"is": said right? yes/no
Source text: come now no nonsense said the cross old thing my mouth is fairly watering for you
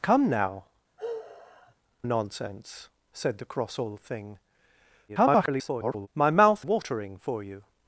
no